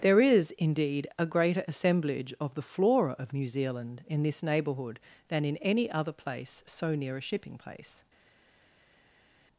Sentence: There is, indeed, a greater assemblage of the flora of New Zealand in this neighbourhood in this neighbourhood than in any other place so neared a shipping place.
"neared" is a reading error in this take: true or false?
true